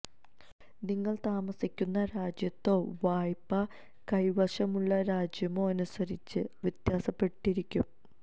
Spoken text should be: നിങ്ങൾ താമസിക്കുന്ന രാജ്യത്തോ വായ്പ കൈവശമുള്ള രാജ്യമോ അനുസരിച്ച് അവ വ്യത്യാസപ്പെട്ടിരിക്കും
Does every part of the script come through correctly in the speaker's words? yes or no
no